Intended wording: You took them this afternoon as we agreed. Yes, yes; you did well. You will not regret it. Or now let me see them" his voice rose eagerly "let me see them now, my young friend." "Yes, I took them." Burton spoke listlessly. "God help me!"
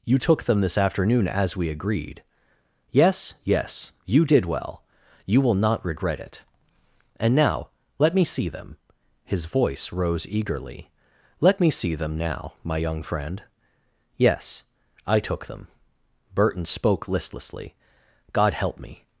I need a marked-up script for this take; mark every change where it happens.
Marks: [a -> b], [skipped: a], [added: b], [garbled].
You took them this afternoon as we agreed. Yes, yes; you did well. You will not regret it. [Or -> And] now let me see them" his voice rose eagerly "let me see them now, my young friend." "Yes, I took them." Burton spoke listlessly. "God help me!"